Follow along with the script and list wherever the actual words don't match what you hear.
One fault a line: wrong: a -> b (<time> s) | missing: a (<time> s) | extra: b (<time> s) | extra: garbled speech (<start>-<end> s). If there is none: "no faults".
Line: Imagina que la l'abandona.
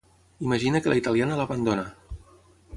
extra: italiana (1.0 s)